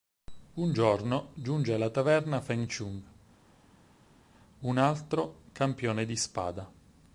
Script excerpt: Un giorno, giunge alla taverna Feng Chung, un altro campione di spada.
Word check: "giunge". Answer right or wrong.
right